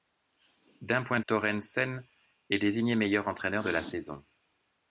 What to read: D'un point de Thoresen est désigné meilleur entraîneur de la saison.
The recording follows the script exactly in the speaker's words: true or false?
true